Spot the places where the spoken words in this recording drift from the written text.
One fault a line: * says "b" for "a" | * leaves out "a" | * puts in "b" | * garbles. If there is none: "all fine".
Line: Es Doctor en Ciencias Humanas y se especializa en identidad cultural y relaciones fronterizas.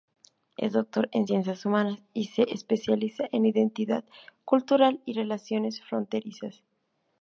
all fine